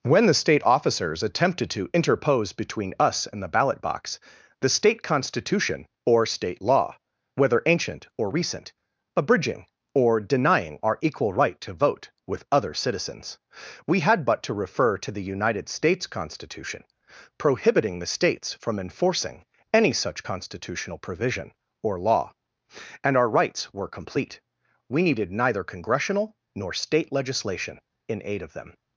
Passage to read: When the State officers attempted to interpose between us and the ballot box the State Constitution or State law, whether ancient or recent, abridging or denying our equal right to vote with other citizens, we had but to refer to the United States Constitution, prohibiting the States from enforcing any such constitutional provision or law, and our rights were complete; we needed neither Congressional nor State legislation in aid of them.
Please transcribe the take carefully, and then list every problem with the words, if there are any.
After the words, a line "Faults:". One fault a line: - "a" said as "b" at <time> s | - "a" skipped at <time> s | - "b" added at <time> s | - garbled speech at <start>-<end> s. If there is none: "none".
When the State officers attempted to interpose between us and the ballot box the State Constitution or State law, whether ancient or recent, abridging or denying our equal right to vote with other citizens, we had but to refer to the United States Constitution, prohibiting the States from enforcing any such constitutional provision or law, and our rights were complete; we needed neither Congressional nor State legislation in aid of them.
Faults:
none